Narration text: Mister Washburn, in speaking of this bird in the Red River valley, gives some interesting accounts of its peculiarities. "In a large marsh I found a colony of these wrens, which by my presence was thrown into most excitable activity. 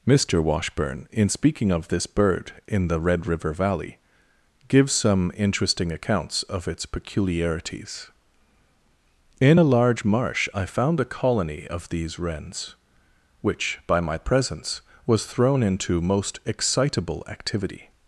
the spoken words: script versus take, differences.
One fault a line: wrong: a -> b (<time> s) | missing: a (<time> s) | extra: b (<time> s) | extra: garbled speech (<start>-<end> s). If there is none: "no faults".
no faults